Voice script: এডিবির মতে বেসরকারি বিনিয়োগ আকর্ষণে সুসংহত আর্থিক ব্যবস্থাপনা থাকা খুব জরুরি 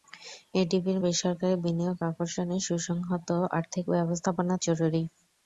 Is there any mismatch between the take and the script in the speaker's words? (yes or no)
yes